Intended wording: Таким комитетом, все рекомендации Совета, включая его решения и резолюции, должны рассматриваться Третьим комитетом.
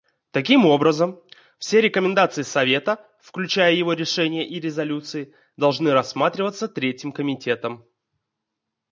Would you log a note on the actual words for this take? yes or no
yes